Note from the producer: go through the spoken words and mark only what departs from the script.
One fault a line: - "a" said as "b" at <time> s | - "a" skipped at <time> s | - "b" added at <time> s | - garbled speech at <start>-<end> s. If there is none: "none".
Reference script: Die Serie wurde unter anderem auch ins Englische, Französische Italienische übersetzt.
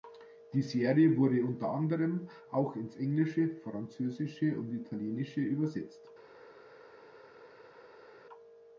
- "und" added at 4.6 s